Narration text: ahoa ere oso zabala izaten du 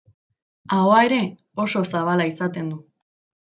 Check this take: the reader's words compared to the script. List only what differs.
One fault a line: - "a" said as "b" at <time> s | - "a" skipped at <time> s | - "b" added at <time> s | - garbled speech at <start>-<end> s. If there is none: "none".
none